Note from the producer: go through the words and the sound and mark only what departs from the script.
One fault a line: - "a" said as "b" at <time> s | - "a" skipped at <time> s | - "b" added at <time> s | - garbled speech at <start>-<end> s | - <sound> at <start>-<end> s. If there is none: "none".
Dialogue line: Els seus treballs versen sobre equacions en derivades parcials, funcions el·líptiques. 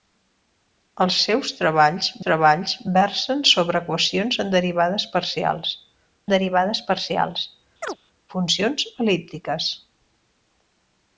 - "treballs" added at 2.2 s
- "derivades parcials" added at 6.3 s
- chirp at 7.8-8.0 s